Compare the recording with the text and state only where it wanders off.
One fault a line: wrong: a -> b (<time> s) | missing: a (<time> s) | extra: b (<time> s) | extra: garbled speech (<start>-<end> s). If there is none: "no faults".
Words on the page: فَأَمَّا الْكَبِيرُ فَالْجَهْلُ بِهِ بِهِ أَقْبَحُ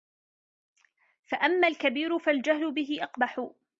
missing: بِهِ (3.0 s)